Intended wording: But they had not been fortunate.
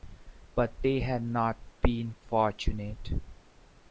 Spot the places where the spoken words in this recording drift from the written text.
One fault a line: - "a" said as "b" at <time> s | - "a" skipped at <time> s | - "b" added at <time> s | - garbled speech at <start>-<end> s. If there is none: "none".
none